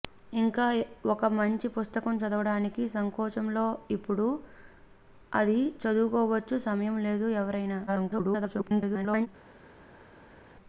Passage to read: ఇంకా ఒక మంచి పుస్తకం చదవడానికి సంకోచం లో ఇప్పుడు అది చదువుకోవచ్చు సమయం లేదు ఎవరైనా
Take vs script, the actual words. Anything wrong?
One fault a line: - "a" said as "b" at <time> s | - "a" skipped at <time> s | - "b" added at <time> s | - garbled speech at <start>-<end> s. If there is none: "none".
- garbled speech at 7.9-9.3 s